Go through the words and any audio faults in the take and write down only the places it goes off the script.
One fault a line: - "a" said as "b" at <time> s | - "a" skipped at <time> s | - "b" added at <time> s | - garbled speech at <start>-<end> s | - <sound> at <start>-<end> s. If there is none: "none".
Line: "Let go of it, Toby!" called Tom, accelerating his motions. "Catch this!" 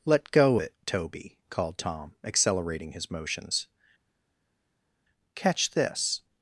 - "of" skipped at 0.6 s